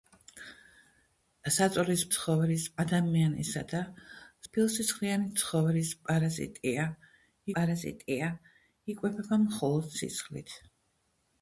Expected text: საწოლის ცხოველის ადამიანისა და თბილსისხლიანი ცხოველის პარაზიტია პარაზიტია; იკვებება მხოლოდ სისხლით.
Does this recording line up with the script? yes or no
yes